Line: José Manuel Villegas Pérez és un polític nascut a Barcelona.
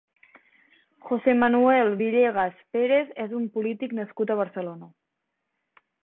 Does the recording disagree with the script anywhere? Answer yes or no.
no